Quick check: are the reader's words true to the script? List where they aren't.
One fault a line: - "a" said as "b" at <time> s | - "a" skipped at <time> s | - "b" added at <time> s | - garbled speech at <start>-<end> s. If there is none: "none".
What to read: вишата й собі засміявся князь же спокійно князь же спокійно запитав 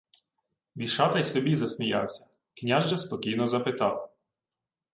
- "князь же спокійно" skipped at 3.5 s